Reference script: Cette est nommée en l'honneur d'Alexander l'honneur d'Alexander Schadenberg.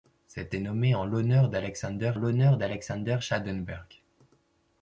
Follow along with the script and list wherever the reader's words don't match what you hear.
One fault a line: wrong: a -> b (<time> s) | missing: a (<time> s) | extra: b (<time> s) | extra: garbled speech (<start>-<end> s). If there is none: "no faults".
no faults